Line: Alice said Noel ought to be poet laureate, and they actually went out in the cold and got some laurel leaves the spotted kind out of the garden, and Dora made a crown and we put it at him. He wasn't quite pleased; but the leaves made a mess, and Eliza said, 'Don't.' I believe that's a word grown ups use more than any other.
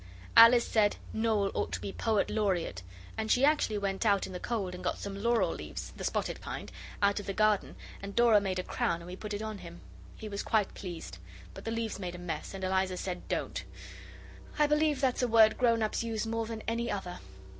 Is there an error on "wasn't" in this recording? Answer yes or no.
yes